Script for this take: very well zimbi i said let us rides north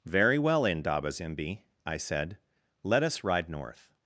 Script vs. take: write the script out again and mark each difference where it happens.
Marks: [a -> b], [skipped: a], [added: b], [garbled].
very well [added: indaba] zimbi i said let us [rides -> ride] north